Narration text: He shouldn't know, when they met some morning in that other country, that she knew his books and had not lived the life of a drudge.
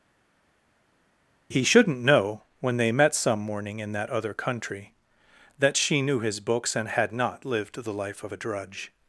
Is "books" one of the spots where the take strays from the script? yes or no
no